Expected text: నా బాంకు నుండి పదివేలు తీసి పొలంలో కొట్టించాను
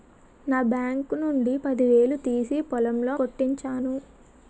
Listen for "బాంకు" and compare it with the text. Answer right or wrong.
right